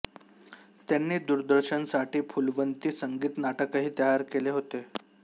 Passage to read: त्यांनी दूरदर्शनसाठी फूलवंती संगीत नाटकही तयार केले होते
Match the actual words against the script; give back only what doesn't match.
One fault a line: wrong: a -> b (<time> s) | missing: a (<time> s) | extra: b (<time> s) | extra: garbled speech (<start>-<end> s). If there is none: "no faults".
no faults